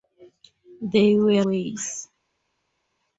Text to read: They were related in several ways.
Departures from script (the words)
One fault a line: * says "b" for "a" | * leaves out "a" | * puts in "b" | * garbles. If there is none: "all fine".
* leaves out "related in several"